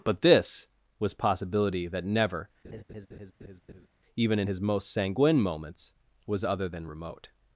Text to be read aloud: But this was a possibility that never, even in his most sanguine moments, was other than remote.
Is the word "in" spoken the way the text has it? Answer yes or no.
yes